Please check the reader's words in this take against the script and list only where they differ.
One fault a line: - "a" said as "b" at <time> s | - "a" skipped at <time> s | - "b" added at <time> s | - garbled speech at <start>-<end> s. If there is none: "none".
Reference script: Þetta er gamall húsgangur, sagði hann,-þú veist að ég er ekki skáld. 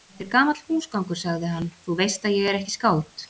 none